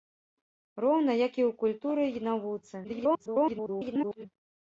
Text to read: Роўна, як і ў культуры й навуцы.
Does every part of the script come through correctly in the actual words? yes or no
no